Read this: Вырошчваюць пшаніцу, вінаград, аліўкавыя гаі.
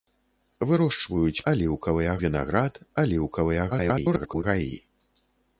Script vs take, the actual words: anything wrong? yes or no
yes